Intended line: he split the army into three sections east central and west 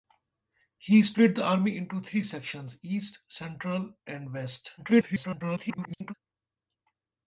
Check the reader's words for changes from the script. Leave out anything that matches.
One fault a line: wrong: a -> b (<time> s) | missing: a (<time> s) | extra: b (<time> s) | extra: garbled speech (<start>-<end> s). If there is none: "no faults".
extra: garbled speech (4.8-6.1 s)